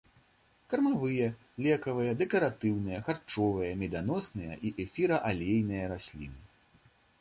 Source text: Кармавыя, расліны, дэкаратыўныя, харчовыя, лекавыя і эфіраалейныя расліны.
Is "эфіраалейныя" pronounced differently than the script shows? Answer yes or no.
no